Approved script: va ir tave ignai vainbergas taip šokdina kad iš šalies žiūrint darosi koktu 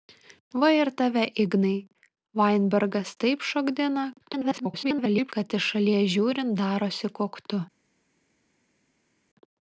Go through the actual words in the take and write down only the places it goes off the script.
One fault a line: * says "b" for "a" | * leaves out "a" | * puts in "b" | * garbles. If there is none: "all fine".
* garbles